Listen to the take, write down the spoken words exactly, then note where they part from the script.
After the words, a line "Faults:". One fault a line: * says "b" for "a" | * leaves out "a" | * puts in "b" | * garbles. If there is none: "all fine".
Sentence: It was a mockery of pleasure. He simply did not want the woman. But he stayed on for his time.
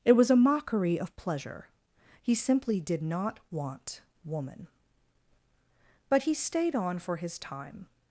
It was a mockery of pleasure. He simply did not want woman. But he stayed on for his time.
Faults:
* leaves out "the"